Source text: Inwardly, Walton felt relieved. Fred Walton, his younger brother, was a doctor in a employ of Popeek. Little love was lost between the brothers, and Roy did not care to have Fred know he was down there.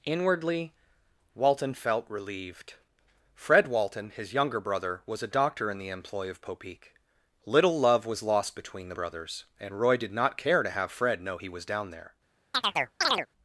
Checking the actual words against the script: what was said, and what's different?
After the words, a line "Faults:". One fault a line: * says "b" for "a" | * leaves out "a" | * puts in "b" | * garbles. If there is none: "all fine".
Inwardly, Walton felt relieved. Fred Walton, his younger brother, was a doctor in the employ of Popeek. Little love was lost between the brothers, and Roy did not care to have Fred know he was down there.
Faults:
* says "the" for "a"